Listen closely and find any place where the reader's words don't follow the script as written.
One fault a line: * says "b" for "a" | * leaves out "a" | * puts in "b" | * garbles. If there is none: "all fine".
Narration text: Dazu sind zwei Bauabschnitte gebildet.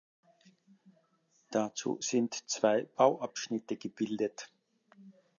all fine